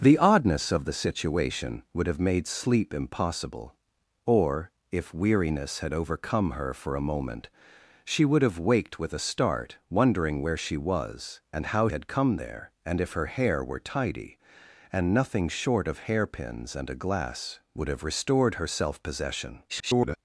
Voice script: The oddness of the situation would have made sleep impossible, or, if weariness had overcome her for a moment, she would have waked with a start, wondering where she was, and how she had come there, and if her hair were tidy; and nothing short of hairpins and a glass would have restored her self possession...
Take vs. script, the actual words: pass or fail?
fail